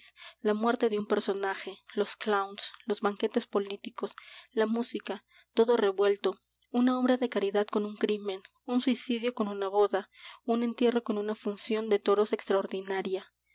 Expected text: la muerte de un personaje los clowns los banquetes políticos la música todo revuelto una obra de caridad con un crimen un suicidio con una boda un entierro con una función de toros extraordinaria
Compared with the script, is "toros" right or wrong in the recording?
right